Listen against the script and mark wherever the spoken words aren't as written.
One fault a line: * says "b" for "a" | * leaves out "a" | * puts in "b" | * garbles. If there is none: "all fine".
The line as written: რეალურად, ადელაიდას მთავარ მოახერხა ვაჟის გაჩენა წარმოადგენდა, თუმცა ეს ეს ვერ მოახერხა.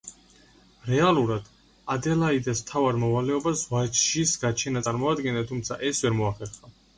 * says "მოვალეობას" for "მოახერხა"
* leaves out "ეს"